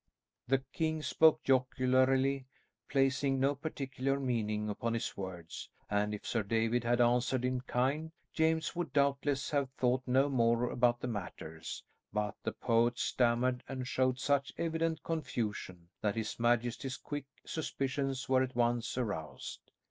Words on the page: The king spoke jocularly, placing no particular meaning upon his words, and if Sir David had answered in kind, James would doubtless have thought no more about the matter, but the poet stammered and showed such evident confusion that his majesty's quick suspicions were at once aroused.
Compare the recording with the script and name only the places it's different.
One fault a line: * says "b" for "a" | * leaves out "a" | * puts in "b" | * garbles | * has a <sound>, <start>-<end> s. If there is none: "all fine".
all fine